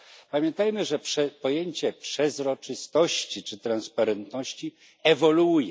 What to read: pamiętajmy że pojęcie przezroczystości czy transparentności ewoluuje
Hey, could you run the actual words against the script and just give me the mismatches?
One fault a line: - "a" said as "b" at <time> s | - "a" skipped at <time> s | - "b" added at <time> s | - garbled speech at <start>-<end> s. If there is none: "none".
none